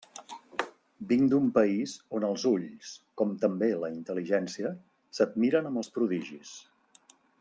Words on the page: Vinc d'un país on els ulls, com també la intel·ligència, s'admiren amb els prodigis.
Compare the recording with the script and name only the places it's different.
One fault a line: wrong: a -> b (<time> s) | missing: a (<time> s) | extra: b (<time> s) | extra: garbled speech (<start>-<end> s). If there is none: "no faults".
no faults